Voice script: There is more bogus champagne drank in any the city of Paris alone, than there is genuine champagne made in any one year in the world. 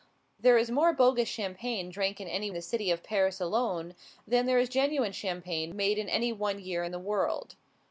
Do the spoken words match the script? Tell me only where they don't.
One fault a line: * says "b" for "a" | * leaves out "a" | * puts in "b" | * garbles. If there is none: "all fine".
all fine